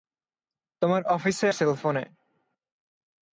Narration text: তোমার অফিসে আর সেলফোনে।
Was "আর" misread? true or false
true